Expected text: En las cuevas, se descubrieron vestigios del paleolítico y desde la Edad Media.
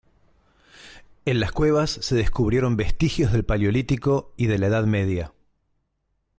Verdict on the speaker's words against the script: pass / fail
fail